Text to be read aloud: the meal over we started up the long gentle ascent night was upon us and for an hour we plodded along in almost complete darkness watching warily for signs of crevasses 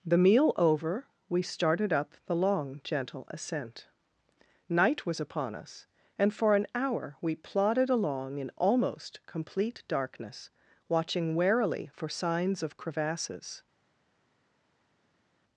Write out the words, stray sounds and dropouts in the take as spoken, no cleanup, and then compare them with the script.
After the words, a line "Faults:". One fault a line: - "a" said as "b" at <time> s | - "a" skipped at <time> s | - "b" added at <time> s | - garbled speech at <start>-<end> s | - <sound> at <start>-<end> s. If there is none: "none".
the meal over we started up the long gentle ascent night was upon us and for an hour we plodded along in almost complete darkness watching warily for signs of crevasses
Faults:
none